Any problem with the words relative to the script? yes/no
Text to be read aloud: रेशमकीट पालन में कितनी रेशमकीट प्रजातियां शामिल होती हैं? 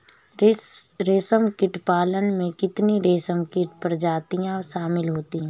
no